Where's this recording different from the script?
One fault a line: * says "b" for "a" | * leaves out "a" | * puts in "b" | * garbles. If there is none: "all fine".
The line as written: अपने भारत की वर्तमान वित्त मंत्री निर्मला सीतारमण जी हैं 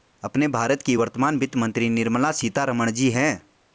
all fine